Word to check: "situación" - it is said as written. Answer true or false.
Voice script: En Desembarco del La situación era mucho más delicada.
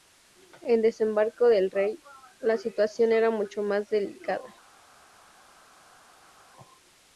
true